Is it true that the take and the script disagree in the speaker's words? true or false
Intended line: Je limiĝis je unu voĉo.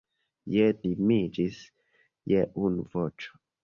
false